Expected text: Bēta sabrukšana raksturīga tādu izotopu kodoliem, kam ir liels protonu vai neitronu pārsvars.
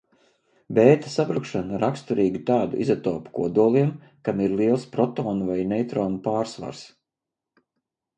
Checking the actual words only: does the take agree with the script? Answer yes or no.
yes